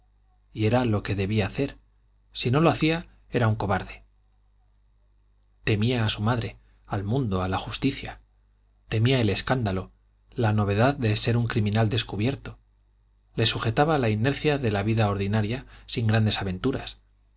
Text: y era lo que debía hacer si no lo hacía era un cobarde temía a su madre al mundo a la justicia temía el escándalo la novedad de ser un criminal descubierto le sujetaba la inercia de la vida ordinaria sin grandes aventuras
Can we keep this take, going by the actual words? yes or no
yes